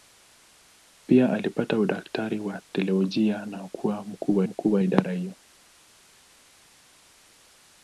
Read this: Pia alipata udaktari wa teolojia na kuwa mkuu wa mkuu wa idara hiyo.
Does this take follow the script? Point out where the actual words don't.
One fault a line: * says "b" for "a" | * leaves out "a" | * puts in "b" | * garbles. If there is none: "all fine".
all fine